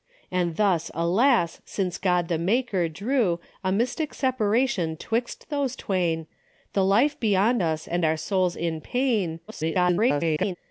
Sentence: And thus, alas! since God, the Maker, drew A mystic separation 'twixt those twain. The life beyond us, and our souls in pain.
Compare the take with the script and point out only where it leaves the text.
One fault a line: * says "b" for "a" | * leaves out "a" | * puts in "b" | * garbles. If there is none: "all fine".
* garbles